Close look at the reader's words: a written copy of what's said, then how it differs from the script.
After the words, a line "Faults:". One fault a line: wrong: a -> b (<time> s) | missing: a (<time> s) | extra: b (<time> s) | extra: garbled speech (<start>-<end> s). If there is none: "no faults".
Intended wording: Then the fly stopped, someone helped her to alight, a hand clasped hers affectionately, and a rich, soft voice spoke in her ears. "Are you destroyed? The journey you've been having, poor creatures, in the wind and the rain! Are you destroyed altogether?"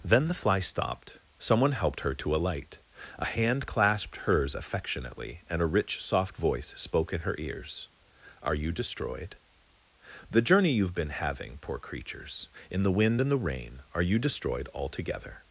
Then the fly stopped, someone helped her to alight, a hand clasped hers affectionately, and a rich, soft voice spoke in her ears. "Are you destroyed? The journey you've been having, poor creatures, in the wind and the rain! Are you destroyed altogether?"
Faults:
no faults